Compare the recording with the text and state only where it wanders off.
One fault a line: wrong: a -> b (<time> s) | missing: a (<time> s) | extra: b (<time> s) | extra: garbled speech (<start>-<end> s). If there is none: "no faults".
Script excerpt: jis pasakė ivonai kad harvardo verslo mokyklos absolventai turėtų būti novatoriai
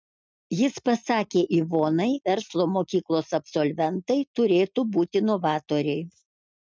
missing: kad harvardo (2.1 s)